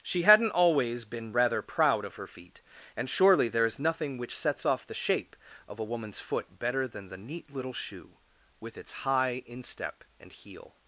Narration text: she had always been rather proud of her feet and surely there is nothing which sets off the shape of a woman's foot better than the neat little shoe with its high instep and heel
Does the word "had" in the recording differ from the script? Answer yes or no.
yes